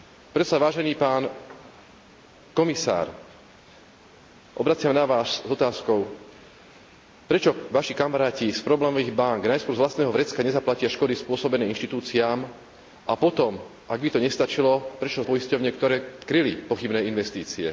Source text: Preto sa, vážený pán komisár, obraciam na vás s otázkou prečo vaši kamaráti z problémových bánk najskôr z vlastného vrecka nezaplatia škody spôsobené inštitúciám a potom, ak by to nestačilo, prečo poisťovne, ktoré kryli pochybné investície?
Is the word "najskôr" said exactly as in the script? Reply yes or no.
yes